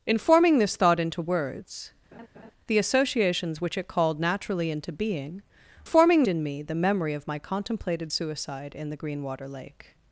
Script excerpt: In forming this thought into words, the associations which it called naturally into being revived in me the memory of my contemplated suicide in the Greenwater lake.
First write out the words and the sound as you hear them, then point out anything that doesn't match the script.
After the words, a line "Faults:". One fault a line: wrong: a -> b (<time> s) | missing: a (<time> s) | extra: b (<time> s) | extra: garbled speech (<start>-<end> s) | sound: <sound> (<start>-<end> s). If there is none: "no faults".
In forming this thought into words, the associations which it called naturally into being forming in me the memory of my contemplated suicide in the Greenwater lake.
Faults:
sound: laugh (2.1-2.5 s)
wrong: revived -> forming (5.8 s)